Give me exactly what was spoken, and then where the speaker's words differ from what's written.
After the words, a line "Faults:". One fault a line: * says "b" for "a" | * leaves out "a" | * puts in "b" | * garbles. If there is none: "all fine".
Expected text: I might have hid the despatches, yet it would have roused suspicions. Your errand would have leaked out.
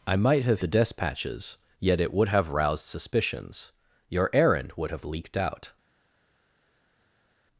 I might have the despatches, yet it would have roused suspicions. Your errand would have leaked out.
Faults:
* leaves out "hid"